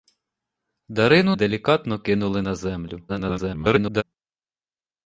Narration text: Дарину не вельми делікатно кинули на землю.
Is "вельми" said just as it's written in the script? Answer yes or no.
no